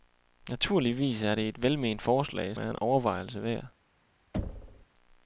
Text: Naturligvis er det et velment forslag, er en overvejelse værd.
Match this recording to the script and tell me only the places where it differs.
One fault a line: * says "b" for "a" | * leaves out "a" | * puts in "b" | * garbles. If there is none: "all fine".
all fine